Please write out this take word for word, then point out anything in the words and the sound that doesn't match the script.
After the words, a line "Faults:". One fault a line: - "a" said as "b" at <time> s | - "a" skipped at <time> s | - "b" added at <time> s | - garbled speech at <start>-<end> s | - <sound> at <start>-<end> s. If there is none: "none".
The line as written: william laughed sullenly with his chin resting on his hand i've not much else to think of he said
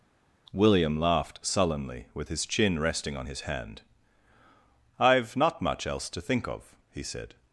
william laughed sullenly with his chin resting on his hand i've not much else to think of he said
Faults:
none